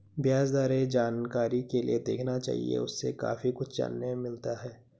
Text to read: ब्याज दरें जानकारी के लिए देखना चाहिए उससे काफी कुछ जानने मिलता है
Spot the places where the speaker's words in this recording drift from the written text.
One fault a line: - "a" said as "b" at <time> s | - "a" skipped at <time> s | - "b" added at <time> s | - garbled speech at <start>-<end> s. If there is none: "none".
none